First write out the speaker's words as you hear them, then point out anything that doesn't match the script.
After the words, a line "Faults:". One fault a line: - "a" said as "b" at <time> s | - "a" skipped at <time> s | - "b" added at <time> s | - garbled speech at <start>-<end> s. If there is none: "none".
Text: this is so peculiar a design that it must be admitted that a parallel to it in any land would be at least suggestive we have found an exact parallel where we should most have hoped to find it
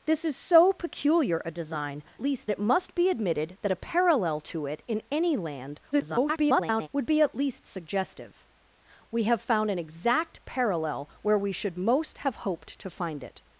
this is so peculiar a design least it must be admitted that a parallel to it in any land [garbled] would be at least suggestive we have found an exact parallel where we should most have hoped to find it
Faults:
- "that" said as "least" at 2.2 s
- garbled speech at 5.9-6.9 s